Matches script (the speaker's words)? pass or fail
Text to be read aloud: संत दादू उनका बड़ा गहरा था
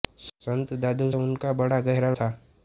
pass